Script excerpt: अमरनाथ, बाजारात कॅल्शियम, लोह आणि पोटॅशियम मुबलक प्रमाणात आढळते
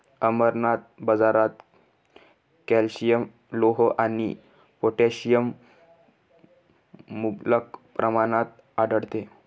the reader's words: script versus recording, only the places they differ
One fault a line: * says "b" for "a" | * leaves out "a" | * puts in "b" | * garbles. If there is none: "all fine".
all fine